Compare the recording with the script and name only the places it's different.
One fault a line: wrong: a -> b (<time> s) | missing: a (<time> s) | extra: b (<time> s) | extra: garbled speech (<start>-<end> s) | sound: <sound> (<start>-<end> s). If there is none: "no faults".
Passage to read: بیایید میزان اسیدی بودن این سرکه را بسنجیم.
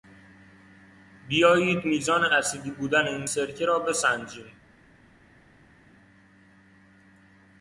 no faults